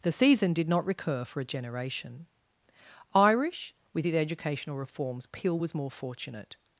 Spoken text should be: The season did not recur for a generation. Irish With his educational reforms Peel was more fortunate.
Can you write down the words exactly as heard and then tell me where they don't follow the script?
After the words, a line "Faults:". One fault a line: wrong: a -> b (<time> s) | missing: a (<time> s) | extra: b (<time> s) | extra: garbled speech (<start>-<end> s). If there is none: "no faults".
The season did not recur for a generation. Irish With his educational reforms Peel was more fortunate.
Faults:
no faults